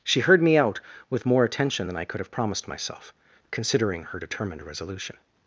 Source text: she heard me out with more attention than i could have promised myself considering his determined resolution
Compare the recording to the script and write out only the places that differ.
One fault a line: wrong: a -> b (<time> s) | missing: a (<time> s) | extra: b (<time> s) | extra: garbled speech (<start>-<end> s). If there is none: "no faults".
wrong: his -> her (4.0 s)